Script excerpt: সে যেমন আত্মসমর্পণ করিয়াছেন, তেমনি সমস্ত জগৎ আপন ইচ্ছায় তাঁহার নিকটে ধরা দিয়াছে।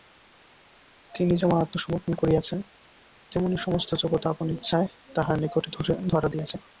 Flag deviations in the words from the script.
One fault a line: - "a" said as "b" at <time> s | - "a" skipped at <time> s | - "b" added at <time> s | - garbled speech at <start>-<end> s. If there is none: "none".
- "সে" said as "তিনি" at 1.1 s